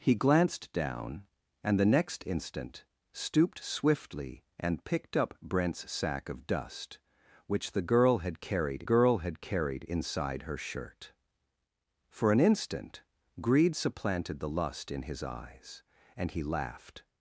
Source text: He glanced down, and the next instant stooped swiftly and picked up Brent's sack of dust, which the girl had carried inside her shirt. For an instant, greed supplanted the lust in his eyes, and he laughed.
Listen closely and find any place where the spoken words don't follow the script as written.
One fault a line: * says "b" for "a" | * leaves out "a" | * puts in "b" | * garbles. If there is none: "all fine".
* puts in "girl had carried"